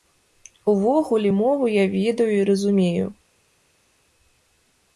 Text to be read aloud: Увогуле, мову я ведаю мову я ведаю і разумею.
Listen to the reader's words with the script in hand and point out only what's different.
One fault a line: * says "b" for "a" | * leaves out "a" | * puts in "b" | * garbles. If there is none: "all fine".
* leaves out "мову я ведаю"